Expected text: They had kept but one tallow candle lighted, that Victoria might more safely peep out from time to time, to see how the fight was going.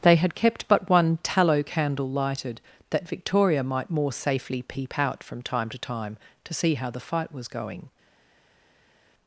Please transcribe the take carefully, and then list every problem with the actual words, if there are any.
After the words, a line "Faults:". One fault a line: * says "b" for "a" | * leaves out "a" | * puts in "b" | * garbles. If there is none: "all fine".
They had kept but one tallow candle lighted, that Victoria might more safely peep out from time to time, to see how the fight was going.
Faults:
all fine